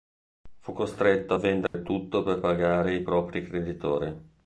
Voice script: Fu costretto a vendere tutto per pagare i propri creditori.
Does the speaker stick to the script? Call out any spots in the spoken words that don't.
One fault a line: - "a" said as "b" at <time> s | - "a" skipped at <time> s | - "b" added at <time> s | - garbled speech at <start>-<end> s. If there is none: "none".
none